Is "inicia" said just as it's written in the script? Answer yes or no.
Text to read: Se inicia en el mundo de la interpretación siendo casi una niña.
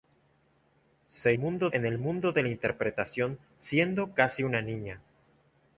no